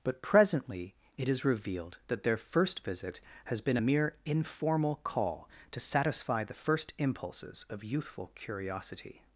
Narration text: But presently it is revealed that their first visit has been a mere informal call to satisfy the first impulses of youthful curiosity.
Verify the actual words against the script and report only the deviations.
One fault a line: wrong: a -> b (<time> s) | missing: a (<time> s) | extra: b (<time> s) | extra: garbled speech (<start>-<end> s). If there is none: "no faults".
no faults